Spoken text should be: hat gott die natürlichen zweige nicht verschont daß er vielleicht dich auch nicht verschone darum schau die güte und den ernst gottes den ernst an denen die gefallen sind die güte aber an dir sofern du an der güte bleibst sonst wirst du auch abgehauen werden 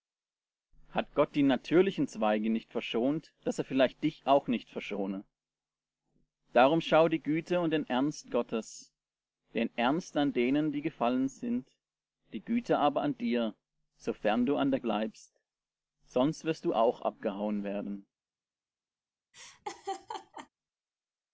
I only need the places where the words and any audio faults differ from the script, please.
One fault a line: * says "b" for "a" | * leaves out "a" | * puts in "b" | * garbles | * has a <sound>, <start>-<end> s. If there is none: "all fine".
* leaves out "güte"
* has a laugh, 19.3-20.5 s